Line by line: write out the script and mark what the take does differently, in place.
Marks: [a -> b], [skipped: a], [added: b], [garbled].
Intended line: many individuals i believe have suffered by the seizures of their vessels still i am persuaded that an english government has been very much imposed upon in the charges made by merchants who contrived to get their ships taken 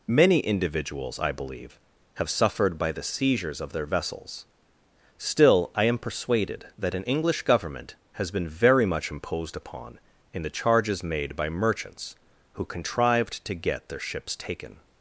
many individuals i believe have suffered by the seizures of their vessels still i am persuaded that an english government has been very much imposed upon in the charges made by merchants who contrived to get their ships taken